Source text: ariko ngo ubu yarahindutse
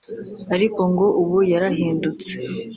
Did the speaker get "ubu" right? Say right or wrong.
right